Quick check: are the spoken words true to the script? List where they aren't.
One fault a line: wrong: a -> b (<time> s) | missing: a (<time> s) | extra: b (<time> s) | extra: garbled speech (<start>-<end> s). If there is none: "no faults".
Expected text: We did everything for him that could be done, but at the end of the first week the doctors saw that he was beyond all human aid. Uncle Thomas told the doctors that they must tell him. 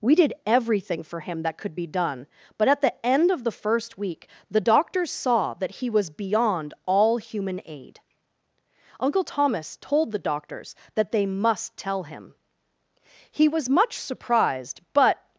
extra: He was much surprised but (13.3 s)